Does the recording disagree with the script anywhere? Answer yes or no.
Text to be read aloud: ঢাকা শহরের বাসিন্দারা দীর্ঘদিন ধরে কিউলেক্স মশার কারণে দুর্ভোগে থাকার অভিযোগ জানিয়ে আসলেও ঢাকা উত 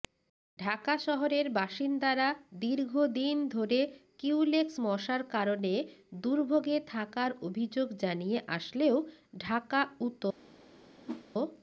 no